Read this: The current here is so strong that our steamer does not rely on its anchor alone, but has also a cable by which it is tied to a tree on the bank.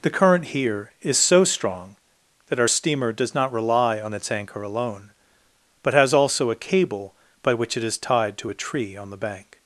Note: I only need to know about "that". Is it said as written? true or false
true